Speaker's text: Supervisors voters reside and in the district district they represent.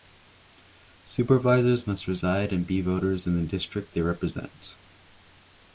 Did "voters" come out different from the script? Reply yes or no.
yes